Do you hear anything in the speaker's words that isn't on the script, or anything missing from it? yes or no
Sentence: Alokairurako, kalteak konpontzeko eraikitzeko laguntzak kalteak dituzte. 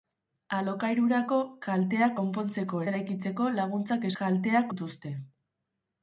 no